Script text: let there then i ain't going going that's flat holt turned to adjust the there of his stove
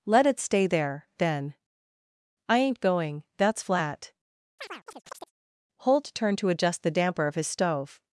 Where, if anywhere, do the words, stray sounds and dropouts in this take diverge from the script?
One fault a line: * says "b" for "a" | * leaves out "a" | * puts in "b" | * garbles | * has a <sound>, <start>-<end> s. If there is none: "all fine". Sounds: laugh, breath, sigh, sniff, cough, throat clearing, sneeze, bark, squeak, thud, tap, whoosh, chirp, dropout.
* puts in "it stay"
* leaves out "going"
* has a chirp, 4.6-5.3 s
* says "damper" for "there"